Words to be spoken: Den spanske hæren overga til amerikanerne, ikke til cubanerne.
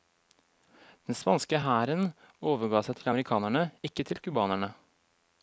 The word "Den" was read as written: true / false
true